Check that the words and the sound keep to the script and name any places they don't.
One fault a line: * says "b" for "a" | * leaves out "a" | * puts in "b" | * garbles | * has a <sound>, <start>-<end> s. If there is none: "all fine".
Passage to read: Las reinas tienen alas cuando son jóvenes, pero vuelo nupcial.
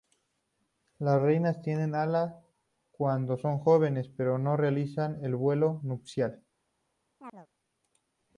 * puts in "no realizan el"
* has a chirp, 7.2-7.5 s